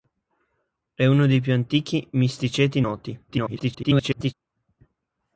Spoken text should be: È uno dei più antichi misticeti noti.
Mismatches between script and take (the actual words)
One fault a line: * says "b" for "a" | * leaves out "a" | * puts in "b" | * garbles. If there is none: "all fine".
* garbles